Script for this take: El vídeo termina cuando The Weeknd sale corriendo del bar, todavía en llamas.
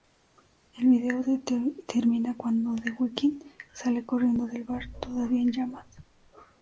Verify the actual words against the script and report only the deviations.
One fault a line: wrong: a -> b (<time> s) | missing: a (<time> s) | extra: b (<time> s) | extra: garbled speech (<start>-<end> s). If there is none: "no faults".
no faults